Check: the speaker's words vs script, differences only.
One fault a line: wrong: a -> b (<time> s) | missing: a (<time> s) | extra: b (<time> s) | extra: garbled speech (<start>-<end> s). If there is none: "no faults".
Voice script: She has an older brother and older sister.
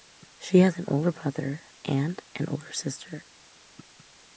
extra: an (2.3 s)